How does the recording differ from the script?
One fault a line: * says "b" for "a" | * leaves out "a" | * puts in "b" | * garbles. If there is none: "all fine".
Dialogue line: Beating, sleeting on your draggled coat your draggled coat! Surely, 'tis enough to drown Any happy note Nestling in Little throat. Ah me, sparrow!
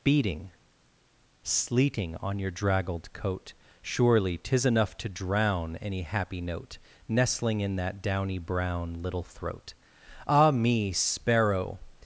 * leaves out "your draggled coat"
* puts in "that downy brown"